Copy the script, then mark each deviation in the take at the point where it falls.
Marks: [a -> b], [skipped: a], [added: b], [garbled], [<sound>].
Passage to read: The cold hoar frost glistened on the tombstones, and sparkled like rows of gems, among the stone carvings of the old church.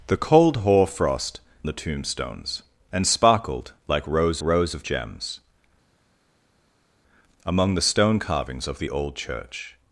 The cold hoar frost [skipped: glistened on] the tombstones, and sparkled like rows [added: rows] of gems, among the stone carvings of the old church.